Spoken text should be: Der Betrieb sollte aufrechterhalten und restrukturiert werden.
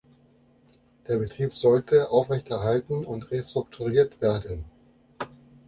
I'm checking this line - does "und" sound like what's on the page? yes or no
yes